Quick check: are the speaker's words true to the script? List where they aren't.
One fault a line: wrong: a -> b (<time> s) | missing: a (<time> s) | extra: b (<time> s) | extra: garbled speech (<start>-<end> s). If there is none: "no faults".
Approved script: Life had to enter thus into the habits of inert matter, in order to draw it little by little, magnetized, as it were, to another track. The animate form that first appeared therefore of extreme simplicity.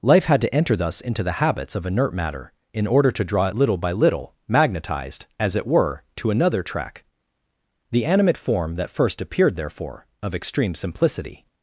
no faults